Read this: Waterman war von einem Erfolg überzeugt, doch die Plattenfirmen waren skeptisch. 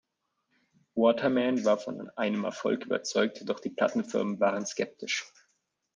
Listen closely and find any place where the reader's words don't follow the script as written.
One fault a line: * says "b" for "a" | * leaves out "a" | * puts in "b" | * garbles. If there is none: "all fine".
all fine